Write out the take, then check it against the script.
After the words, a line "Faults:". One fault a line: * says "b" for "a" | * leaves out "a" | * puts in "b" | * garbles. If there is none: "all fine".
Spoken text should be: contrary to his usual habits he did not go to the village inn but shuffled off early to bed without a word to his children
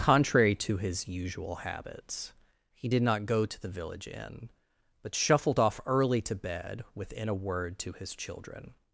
contrary to his usual habits he did not go to the village inn but shuffled off early to bed within a word to his children
Faults:
* says "within" for "without"